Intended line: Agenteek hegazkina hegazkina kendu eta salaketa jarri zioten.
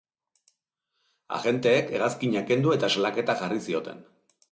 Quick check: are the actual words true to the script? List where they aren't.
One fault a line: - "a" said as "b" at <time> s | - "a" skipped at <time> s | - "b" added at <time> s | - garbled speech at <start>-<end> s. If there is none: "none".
- "hegazkina" skipped at 2.4 s